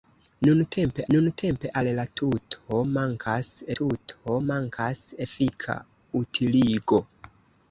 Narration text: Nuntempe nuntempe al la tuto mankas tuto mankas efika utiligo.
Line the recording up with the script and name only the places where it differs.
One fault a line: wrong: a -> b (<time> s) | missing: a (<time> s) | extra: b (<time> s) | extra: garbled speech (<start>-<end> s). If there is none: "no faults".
no faults